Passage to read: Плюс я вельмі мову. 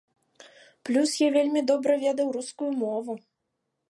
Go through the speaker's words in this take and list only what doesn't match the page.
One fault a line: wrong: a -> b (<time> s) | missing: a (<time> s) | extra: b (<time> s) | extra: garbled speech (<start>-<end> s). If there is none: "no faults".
extra: добра ведаў рускую (1.7 s)